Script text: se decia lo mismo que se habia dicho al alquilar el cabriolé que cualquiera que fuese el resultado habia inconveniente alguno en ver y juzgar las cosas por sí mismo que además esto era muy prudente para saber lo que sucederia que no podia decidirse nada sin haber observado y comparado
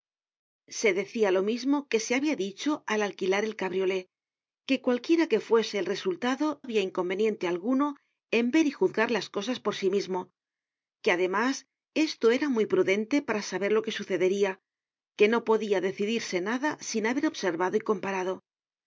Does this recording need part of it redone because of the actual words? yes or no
no